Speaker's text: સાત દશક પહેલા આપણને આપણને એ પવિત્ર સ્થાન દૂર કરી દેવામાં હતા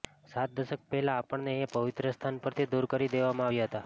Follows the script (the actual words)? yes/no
no